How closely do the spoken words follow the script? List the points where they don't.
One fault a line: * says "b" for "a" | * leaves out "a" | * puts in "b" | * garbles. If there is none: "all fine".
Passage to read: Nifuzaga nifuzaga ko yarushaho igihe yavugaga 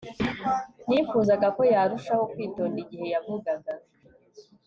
* leaves out "nifuzaga"
* puts in "kwitonda"